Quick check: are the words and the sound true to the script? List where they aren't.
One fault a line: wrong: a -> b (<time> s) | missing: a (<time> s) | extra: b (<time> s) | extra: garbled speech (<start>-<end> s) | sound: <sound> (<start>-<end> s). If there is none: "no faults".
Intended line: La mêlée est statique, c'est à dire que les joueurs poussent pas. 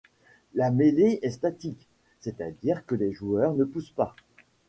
extra: ne (3.5 s)